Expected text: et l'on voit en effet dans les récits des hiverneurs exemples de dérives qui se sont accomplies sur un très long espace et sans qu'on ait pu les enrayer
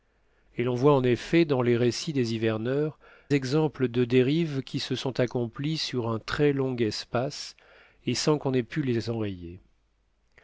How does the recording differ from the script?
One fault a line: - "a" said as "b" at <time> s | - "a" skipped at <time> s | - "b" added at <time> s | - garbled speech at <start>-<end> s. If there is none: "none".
none